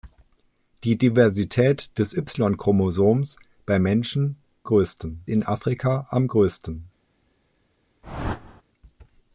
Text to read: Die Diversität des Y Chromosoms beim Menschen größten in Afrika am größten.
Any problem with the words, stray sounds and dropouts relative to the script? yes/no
yes